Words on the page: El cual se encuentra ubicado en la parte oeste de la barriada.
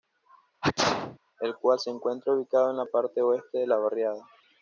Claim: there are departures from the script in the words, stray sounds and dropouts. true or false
true